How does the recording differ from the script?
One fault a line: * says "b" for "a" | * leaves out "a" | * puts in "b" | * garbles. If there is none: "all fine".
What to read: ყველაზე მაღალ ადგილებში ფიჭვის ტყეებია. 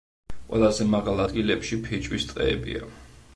all fine